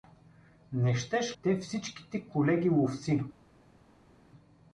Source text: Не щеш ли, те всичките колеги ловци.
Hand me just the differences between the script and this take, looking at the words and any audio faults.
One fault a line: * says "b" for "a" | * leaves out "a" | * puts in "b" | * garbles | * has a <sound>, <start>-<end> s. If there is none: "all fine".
* leaves out "ли"